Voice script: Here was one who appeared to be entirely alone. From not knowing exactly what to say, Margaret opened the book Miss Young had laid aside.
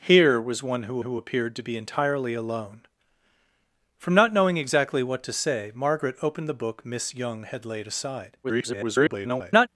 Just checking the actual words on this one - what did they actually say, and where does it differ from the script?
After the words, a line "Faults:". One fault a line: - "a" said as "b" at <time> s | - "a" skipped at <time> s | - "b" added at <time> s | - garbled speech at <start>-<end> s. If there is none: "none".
Here was one who who appeared to be entirely alone. From not knowing exactly what to say, Margaret opened the book Miss Young had laid aside. [garbled]
Faults:
- "who" added at 1.0 s
- garbled speech at 8.4-9.7 s